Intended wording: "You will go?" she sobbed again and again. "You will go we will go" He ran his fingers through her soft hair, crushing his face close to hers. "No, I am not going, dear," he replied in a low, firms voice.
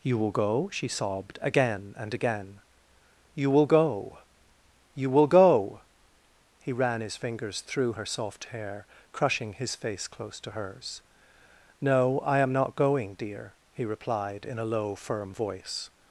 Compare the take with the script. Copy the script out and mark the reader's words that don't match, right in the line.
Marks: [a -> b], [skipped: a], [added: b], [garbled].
"You will go?" she sobbed again and again. "You will go [we -> you] will go" He ran his fingers through her soft hair, crushing his face close to hers. "No, I am not going, dear," he replied in a low, [firms -> firm] voice.